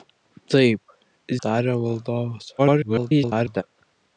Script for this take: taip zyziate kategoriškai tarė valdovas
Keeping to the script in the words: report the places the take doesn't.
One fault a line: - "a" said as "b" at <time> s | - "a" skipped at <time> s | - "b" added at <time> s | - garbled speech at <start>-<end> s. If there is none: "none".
- "zyziate kategoriškai" skipped at 0.9 s
- garbled speech at 2.6-3.6 s